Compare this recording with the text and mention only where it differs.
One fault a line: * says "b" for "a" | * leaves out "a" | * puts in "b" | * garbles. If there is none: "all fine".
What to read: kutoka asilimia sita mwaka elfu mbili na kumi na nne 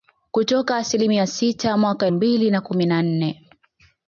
* leaves out "elfu"